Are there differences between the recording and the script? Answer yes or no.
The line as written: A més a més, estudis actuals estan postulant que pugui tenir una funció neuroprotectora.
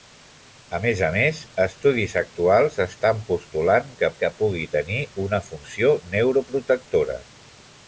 yes